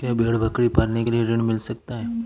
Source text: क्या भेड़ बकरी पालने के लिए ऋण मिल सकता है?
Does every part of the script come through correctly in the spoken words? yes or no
yes